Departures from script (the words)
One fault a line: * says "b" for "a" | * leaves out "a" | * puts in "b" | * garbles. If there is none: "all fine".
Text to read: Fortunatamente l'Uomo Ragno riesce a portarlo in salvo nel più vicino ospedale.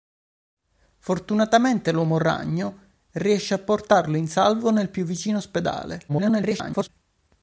* garbles